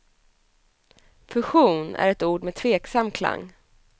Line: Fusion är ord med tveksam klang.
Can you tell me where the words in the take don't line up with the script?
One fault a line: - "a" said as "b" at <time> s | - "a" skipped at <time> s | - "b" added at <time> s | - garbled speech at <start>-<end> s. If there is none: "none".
- "ett" added at 2.1 s